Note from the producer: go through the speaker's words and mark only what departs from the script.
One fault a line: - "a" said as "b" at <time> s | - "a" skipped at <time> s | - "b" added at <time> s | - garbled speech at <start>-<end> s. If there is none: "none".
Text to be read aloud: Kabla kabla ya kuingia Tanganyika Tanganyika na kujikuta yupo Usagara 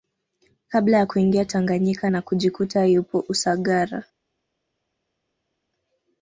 - "kabla" skipped at 1.0 s
- "Tanganyika" skipped at 2.1 s